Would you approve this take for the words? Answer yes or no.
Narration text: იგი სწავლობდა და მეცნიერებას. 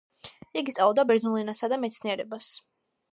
no